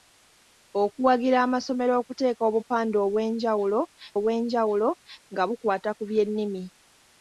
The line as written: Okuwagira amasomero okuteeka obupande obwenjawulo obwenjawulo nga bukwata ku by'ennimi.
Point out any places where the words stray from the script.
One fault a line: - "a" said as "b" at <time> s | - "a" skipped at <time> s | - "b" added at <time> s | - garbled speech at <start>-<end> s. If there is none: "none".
none